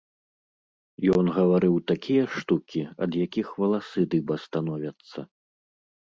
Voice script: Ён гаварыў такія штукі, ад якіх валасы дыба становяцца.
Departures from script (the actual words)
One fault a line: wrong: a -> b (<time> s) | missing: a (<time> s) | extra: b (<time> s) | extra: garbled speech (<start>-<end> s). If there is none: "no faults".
no faults